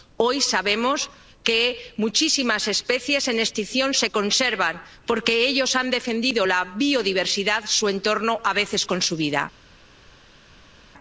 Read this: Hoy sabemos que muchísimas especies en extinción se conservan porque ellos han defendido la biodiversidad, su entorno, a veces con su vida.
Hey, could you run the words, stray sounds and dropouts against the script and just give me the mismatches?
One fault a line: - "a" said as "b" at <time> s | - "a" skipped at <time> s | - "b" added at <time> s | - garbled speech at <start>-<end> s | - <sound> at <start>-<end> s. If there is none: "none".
none